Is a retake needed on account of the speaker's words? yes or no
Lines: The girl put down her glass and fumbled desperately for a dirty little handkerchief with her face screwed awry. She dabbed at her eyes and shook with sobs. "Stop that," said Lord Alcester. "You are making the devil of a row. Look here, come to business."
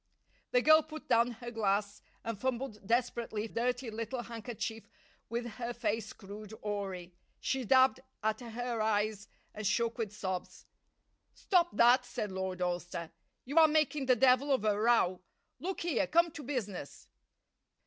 yes